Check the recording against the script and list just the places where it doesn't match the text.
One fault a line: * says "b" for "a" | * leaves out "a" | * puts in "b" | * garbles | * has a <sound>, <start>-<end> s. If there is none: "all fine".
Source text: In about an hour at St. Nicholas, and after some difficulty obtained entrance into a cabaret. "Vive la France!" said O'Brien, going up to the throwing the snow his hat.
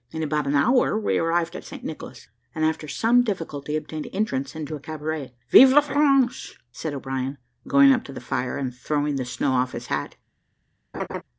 * puts in "we arrived"
* puts in "fire and"
* puts in "off"
* has a laugh, 10.9-11.2 s